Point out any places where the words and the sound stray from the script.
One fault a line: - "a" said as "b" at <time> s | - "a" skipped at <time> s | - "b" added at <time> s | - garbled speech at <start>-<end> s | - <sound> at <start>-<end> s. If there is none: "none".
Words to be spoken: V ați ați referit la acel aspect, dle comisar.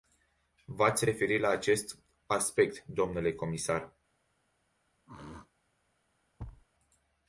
- "ați" skipped at 1.1 s
- "acel" said as "acest" at 1.5 s
- throat clearing at 5.1-5.5 s
- thud at 6.4-6.7 s